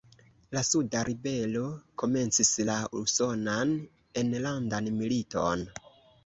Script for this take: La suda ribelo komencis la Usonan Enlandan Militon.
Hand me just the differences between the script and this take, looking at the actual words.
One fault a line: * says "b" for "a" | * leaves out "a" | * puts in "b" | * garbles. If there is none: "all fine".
all fine